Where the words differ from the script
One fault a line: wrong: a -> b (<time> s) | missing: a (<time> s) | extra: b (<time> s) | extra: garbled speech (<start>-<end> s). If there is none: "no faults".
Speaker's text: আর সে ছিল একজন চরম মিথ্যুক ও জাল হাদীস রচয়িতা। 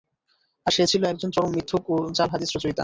no faults